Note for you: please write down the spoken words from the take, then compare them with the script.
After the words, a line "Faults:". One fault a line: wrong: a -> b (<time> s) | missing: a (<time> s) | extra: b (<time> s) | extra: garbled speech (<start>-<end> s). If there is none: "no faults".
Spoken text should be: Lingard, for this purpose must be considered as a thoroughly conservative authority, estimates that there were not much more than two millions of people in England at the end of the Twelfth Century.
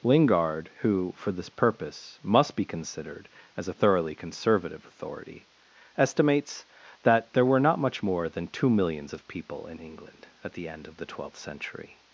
Lingard, who for this purpose must be considered as a thoroughly conservative authority, estimates that there were not much more than two millions of people in England at the end of the Twelfth Century.
Faults:
extra: who (0.8 s)